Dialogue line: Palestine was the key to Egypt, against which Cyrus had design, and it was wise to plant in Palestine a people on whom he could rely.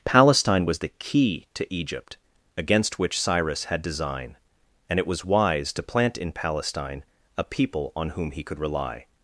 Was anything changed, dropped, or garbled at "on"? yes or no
no